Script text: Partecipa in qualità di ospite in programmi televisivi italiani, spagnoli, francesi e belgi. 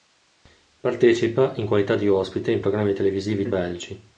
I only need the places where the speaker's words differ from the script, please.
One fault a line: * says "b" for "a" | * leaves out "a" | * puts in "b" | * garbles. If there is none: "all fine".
* leaves out "italiani spagnoli francesi"